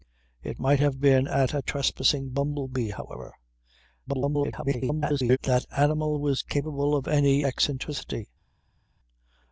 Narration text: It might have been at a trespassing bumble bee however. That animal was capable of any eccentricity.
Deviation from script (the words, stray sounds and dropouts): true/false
true